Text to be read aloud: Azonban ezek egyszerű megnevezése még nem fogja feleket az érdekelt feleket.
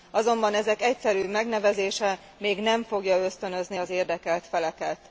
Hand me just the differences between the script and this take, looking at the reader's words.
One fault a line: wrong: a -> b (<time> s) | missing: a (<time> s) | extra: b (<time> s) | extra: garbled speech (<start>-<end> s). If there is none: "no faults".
wrong: feleket -> ösztönözni (3.2 s)